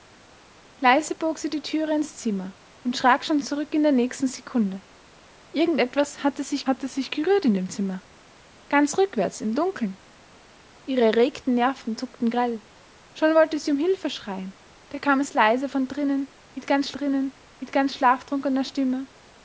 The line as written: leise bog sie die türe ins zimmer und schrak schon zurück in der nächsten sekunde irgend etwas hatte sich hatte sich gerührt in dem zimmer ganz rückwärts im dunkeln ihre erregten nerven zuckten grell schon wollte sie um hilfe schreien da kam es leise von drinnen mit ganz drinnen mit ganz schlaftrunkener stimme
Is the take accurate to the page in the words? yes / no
yes